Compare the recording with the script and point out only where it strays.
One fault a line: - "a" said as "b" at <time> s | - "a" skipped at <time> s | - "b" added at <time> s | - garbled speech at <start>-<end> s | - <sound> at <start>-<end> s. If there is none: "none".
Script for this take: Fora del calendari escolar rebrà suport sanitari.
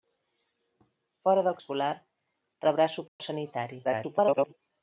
- "calendari" skipped at 1.6 s
- dropout at 3.1-3.2 s
- garbled speech at 3.8-4.5 s